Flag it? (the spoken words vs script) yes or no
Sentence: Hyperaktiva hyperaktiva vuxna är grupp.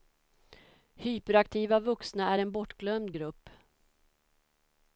yes